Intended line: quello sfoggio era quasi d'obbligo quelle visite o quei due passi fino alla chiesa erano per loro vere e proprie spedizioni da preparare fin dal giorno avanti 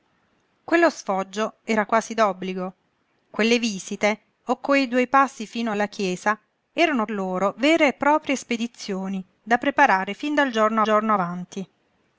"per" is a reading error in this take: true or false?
true